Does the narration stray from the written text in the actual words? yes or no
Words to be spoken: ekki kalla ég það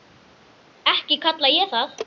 no